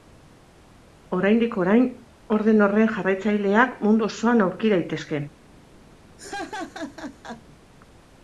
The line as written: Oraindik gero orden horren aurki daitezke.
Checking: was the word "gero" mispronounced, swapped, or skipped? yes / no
yes